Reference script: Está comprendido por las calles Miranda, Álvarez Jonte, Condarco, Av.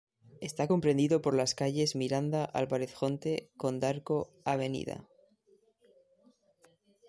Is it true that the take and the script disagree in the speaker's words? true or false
false